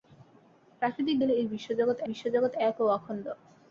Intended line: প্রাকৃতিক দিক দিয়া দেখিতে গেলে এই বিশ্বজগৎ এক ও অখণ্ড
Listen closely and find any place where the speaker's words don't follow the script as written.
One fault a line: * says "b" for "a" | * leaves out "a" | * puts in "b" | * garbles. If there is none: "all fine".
* leaves out "দিক দিয়া দেখিতে"
* puts in "বিশ্বজগৎ"